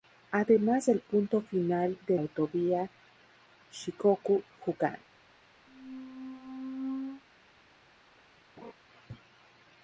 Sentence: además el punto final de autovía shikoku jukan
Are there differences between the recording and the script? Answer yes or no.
no